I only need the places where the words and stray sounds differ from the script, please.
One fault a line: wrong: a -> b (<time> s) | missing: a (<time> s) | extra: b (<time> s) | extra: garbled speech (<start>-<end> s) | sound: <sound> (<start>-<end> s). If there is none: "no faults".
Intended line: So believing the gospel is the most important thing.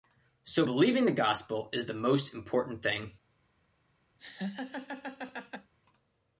sound: laugh (4.2-5.7 s)